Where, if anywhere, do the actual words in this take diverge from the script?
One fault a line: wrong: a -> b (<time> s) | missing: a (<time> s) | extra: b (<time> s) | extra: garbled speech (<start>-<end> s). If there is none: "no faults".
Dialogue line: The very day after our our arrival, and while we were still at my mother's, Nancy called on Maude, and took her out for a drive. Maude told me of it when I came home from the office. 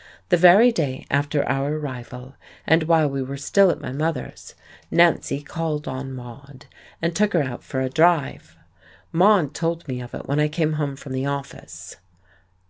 missing: our (1.8 s)